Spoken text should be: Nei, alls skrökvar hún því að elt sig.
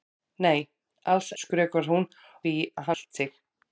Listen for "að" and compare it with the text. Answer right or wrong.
right